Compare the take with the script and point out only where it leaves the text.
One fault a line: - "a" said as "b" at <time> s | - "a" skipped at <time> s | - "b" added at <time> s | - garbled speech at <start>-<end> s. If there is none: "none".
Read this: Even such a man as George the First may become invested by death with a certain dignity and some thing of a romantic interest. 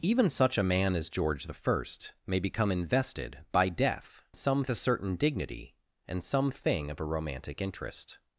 - "with" said as "some" at 4.4 s